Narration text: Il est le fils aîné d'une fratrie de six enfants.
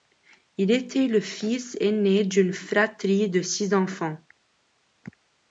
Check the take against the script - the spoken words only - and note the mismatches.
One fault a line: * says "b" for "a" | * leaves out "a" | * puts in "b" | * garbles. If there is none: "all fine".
* says "était" for "est"